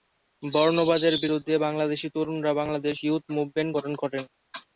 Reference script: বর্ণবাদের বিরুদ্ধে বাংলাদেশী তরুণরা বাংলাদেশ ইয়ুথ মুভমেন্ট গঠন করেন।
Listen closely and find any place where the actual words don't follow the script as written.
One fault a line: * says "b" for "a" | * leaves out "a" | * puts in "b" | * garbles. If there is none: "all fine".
all fine